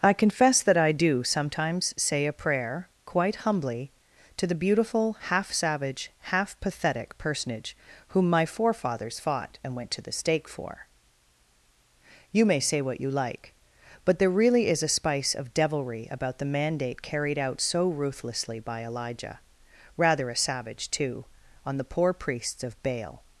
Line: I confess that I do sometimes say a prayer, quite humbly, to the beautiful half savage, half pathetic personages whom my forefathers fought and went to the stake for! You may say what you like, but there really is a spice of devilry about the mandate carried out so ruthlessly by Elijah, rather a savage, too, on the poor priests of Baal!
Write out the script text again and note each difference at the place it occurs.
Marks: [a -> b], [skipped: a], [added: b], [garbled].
I confess that I do sometimes say a prayer, quite humbly, to the beautiful half savage, half pathetic [personages -> personage] whom my forefathers fought and went to the stake for! You may say what you like, but there really is a spice of devilry about the mandate carried out so ruthlessly by Elijah, rather a savage, too, on the poor priests of Baal!